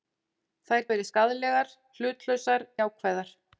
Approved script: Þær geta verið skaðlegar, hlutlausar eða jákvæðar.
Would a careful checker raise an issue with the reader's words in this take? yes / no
yes